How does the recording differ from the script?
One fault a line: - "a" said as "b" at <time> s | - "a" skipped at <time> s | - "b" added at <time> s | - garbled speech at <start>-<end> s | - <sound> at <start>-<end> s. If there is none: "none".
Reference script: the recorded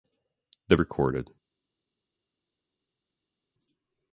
none